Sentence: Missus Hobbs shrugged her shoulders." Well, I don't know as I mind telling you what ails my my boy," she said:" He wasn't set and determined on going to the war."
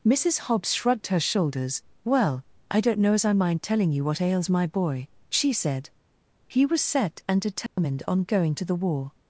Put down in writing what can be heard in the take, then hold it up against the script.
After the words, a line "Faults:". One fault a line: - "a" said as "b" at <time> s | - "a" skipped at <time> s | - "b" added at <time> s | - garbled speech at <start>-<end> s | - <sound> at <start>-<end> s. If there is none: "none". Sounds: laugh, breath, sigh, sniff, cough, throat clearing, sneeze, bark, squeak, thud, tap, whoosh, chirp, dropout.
Missus Hobbs shrugged her shoulders." Well, I don't know as I mind telling you what ails my boy," she said:" He was set and determined on going to the war."
Faults:
- "my" skipped at 4.6 s
- "wasn't" said as "was" at 6.7 s
- dropout at 7.7-7.8 s